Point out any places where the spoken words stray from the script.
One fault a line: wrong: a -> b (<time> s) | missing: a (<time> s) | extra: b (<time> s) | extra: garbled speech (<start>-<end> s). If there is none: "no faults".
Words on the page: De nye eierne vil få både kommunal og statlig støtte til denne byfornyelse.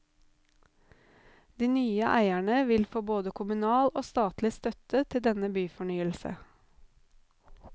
no faults